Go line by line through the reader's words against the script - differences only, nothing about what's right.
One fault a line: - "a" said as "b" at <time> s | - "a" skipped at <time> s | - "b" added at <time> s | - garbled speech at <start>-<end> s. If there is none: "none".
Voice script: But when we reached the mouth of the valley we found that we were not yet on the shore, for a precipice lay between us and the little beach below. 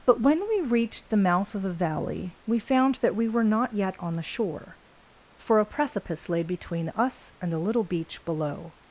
none